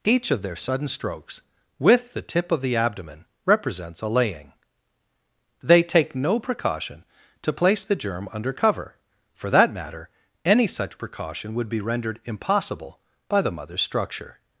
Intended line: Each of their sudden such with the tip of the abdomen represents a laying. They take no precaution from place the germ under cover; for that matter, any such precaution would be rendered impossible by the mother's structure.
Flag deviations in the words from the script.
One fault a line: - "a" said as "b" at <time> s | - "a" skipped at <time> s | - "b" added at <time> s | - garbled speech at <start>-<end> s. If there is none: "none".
- "such" said as "strokes" at 0.9 s
- "from" said as "to" at 7.4 s